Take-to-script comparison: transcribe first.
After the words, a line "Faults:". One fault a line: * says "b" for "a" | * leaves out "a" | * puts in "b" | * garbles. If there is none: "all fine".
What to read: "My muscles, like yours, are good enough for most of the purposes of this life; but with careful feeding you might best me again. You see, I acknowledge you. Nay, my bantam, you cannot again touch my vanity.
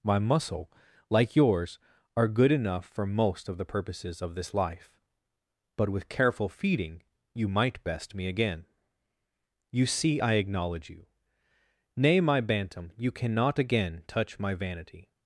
"My muscle, like yours, are good enough for most of the purposes of this life; but with careful feeding you might best me again. You see, I acknowledge you. Nay, my bantam, you cannot again touch my vanity.
Faults:
* says "muscle" for "muscles"